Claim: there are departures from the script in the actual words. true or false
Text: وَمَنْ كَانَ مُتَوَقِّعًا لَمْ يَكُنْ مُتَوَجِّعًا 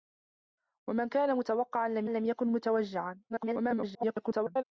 true